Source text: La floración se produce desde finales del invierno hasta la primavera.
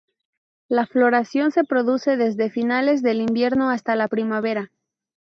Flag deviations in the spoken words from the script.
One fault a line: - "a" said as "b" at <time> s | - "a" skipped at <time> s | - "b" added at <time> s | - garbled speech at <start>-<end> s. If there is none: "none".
none